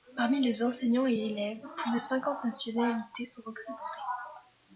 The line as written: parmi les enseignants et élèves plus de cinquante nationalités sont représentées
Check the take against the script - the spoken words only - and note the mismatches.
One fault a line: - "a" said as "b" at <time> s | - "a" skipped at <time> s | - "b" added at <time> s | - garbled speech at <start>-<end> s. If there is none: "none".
none